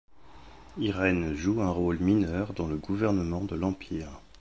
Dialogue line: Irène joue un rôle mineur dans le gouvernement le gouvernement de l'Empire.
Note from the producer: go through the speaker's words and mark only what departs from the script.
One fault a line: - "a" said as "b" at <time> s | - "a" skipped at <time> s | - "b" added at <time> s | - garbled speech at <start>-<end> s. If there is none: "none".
- "le gouvernement" skipped at 3.4 s